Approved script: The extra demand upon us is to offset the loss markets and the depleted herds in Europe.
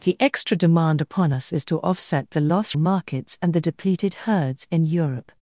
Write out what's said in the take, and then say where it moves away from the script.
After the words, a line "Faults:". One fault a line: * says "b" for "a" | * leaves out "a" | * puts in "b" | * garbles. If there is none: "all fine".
The extra demand upon us is to offset the loss markets and the depleted herds in Europe.
Faults:
all fine